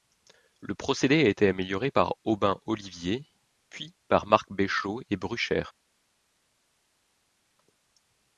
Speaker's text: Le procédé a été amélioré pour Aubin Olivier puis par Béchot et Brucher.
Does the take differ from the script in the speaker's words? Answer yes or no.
yes